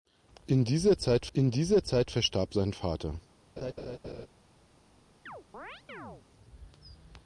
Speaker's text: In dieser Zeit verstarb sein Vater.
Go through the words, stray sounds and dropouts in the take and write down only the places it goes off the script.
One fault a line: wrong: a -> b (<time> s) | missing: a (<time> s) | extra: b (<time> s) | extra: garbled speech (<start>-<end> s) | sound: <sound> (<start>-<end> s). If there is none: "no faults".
extra: in dieser Zeit (1.3 s)
sound: laugh (3.6-4.3 s)
sound: chirp (5.3-6.2 s)